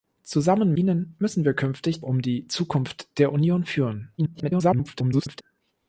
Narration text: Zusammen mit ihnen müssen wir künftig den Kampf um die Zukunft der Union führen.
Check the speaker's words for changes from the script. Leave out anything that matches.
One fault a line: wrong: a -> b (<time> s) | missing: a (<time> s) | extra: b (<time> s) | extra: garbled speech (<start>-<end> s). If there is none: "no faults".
missing: mit (0.7 s)
missing: den Kampf (2.0 s)
extra: garbled speech (4.2-5.4 s)